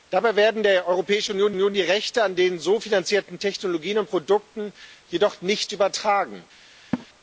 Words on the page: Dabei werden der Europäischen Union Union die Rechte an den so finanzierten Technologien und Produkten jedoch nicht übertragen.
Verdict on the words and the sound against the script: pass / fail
fail